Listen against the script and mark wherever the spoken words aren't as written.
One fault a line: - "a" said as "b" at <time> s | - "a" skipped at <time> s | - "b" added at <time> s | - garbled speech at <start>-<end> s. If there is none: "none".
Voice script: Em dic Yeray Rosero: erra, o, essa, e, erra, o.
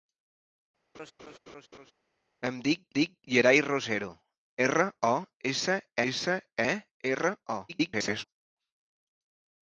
- "dic" added at 3.0 s
- "essa" added at 6.1 s
- garbled speech at 7.7-8.2 s